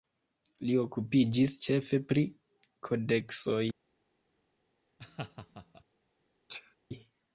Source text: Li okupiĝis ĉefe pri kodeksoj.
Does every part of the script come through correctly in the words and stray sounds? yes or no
no